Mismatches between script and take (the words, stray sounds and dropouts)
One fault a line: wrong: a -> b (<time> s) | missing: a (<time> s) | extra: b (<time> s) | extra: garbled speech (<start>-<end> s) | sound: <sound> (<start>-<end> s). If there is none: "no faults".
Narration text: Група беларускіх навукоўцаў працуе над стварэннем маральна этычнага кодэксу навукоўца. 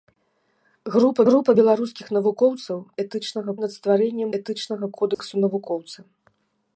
extra: група (1.3 s)
wrong: працуе -> этычнага (3.0 s)
missing: маральна (4.3 s)
sound: dropout (5.1-5.2 s)